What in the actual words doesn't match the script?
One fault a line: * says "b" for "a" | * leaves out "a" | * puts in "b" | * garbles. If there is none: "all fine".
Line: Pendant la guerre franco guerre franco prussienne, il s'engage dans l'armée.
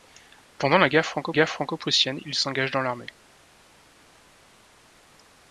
all fine